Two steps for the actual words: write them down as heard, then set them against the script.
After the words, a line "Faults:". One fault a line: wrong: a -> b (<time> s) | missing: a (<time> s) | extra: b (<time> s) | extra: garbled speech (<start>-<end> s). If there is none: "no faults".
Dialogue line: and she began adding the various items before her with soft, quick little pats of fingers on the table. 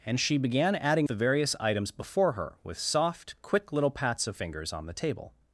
and she began adding the various items before her with soft, quick little pats of fingers on the table.
Faults:
no faults